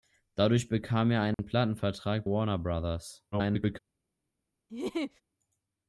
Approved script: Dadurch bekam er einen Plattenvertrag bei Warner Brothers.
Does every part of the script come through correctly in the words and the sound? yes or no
no